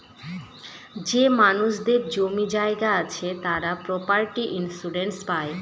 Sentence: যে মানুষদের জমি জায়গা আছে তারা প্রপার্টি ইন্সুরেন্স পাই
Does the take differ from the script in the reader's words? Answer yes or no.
no